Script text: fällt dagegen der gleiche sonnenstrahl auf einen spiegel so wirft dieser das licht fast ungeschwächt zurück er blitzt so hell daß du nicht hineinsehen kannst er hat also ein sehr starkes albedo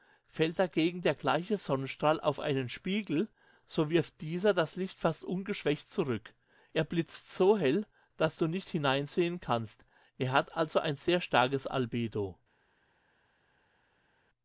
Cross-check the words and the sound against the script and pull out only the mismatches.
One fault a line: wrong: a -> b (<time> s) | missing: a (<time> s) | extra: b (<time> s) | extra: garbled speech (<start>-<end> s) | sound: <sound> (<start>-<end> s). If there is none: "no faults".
no faults